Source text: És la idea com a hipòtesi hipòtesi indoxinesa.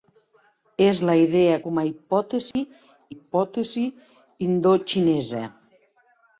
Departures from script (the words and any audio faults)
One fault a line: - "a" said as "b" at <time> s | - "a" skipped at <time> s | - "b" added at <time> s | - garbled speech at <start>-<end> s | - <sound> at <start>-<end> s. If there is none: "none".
- dropout at 2.5-2.6 s